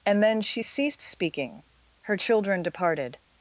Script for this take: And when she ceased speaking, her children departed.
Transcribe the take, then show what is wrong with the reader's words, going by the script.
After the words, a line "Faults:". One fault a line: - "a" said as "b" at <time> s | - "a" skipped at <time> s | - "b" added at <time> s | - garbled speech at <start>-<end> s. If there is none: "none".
And then she ceased speaking, her children departed.
Faults:
- "when" said as "then" at 0.2 s